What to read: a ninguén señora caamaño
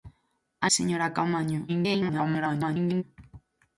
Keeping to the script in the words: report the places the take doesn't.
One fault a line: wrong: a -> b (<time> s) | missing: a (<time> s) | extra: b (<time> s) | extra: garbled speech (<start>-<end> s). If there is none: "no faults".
missing: ninguén (0.7 s)
extra: garbled speech (1.7-3.0 s)